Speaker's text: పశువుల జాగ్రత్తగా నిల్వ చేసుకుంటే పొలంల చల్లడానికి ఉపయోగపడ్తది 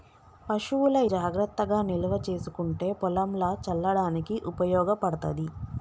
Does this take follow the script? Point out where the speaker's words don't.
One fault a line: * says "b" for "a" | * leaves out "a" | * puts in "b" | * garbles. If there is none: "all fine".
all fine